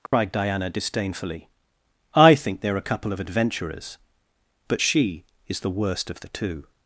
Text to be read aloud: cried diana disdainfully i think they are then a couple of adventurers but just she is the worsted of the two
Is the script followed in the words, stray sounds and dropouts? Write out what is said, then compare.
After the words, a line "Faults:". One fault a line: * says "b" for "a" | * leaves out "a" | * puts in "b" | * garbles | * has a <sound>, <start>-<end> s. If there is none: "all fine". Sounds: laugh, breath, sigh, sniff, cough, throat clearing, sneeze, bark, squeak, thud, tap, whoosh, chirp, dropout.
cried diana disdainfully i think they are a couple of adventurers but she is the worst of the two
Faults:
* has a dropout, 0.1-0.1 s
* leaves out "then"
* leaves out "just"
* says "worst" for "worsted"